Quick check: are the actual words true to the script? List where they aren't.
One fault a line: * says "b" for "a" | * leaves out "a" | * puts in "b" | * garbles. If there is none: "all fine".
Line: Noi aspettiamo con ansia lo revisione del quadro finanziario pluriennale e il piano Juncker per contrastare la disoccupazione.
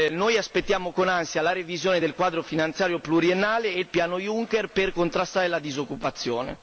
* says "la" for "lo"